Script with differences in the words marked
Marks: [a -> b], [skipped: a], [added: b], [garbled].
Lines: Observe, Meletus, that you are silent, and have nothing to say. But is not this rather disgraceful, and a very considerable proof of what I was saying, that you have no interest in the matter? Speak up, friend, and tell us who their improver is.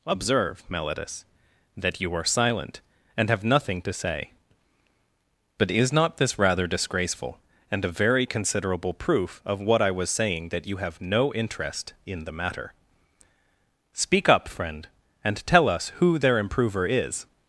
Observe, Meletus, that you are silent, and have nothing to say. But is not this rather disgraceful, and a very considerable proof of what I was saying, that you have no interest in the matter? Speak up, friend, and tell us who their improver is.